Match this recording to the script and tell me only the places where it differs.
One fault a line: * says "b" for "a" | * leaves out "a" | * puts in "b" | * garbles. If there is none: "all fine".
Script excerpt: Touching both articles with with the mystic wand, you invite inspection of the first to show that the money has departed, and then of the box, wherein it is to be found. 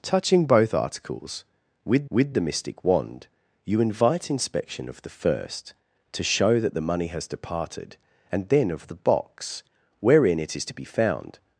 all fine